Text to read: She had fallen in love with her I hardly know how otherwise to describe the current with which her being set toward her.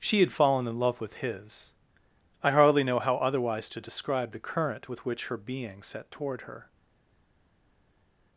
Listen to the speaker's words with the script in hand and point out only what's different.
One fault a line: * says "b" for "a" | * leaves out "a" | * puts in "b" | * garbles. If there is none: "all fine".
* says "his" for "her"